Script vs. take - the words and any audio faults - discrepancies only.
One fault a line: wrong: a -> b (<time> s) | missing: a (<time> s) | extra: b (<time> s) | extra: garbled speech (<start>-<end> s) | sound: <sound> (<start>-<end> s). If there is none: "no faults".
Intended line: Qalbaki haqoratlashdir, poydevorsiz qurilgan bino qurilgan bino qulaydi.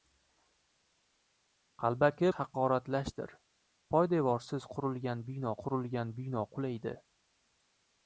no faults